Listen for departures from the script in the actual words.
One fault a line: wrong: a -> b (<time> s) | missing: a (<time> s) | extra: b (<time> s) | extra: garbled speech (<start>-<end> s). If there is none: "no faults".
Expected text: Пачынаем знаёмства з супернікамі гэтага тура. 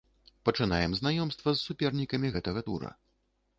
no faults